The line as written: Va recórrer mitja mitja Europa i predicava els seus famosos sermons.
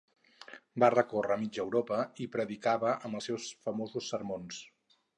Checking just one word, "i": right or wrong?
right